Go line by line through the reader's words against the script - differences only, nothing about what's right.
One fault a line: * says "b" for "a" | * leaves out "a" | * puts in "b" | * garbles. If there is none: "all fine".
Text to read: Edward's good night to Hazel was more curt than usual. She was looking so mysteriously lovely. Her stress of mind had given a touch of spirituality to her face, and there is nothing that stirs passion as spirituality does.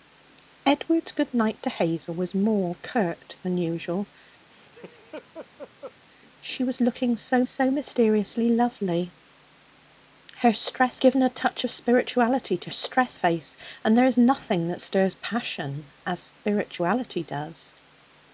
* puts in "so"
* leaves out "of mind had"
* says "stress" for "her"